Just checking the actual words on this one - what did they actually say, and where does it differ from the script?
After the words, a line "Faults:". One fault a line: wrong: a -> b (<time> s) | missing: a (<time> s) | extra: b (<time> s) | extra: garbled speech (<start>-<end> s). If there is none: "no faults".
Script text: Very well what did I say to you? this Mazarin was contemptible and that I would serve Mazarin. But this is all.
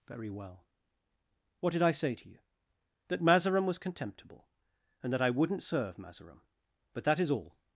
Very well what did I say to you? that Mazarin was contemptible and that I wouldn't serve Mazarin. But that is all.
Faults:
wrong: this -> that (3.1 s)
wrong: would -> wouldn't (5.3 s)
wrong: this -> that (7.0 s)